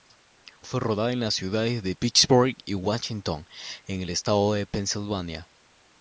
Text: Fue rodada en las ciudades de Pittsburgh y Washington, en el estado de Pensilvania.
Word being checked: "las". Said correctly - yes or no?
yes